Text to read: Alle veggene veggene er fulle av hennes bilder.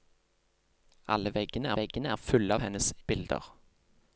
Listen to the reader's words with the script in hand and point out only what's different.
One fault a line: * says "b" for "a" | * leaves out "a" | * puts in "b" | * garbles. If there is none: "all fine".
all fine